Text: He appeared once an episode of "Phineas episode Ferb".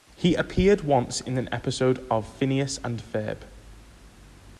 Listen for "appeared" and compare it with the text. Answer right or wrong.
right